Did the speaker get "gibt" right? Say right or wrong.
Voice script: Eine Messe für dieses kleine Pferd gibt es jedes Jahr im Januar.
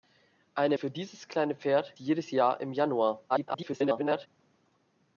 wrong